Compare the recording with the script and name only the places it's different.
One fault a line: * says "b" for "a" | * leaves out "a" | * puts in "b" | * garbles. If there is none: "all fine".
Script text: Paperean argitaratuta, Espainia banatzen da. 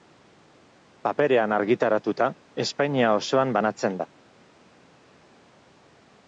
* puts in "osoan"